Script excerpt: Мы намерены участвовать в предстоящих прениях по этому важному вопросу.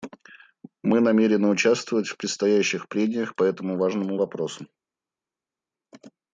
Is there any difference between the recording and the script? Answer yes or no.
no